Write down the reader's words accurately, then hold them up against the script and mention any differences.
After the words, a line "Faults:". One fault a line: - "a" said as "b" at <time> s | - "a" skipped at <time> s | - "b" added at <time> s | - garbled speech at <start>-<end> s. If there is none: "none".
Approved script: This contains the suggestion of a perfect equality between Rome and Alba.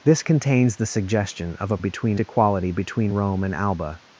This contains the suggestion of a between equality between Rome and Alba.
Faults:
- "perfect" said as "between" at 1.8 s